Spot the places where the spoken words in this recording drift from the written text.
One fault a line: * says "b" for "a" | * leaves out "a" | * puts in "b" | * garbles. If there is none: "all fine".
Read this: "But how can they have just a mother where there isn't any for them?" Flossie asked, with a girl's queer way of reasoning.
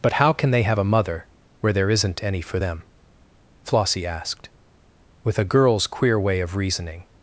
* leaves out "just"